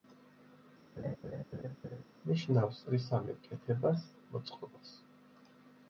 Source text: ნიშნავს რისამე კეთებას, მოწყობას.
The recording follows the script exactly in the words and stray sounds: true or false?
false